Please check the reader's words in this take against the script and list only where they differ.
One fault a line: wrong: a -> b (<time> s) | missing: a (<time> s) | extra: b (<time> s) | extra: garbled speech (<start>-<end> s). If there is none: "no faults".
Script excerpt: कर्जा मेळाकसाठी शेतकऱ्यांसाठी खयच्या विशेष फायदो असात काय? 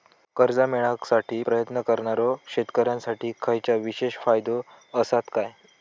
extra: प्रयत्न करणारो (1.4 s)